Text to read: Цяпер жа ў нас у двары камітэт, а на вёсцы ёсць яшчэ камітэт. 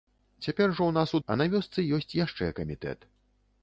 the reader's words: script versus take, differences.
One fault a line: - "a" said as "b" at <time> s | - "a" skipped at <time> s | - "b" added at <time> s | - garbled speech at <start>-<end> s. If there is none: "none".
- "двары камітэт" skipped at 1.2 s